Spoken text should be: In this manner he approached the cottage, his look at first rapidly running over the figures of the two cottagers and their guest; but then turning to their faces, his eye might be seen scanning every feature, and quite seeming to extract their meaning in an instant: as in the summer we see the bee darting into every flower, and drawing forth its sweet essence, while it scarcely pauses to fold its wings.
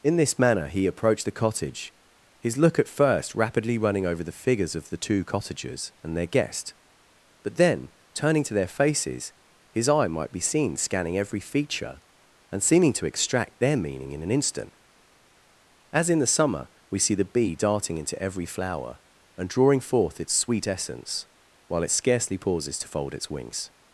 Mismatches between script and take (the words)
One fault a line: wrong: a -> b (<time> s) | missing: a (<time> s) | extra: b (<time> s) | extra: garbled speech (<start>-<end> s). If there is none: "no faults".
missing: quite (12.6 s)